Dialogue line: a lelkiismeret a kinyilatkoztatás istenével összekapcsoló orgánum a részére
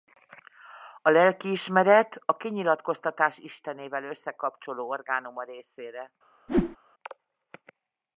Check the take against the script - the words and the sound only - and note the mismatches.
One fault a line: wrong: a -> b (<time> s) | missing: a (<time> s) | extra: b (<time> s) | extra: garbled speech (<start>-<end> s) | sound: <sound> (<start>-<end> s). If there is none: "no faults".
sound: whoosh (6.5-6.8 s)